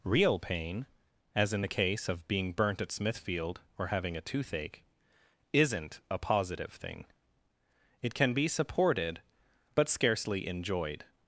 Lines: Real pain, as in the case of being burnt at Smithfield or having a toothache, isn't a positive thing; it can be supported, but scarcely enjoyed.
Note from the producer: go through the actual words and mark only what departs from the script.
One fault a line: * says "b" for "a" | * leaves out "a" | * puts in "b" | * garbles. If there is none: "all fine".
all fine